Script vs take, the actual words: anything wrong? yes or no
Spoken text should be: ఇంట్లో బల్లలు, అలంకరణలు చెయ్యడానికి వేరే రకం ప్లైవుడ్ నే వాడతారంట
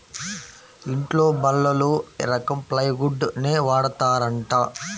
yes